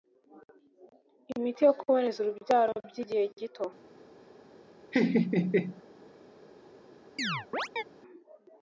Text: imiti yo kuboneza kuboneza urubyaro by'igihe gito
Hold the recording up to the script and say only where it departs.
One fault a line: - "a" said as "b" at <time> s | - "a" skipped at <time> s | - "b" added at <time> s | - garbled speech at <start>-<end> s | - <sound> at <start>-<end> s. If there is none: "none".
- "kuboneza" skipped at 2.2 s
- laugh at 4.9-5.8 s
- chirp at 7.2-7.8 s